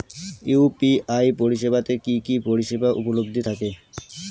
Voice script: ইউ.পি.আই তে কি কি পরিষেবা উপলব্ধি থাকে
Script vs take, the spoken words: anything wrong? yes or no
yes